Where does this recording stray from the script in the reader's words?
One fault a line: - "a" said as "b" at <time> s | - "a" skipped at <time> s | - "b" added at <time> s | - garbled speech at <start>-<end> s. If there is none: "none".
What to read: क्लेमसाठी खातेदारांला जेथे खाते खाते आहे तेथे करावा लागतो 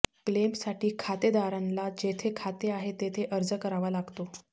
- "खाते" skipped at 2.7 s
- "अर्ज" added at 3.3 s